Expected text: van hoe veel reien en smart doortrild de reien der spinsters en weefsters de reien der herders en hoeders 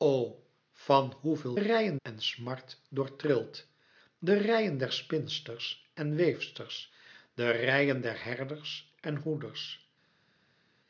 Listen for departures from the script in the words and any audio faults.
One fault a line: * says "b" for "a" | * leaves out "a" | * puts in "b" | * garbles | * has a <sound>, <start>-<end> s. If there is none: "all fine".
all fine